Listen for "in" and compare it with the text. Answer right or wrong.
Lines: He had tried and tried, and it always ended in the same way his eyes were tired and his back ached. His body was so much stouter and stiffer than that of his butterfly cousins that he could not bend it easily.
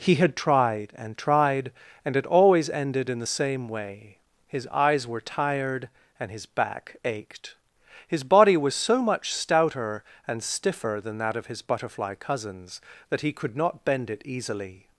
right